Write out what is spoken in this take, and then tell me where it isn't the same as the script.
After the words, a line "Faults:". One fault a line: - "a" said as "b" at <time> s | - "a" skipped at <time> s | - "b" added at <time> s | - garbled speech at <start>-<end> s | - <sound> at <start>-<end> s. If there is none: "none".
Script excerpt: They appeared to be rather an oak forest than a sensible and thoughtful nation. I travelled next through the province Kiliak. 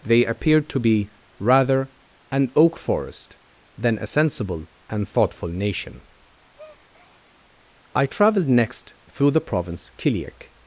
They appeared to be rather an oak forest than a sensible and thoughtful nation. I travelled next through the province Kiliak.
Faults:
- breath at 6.5-7.3 s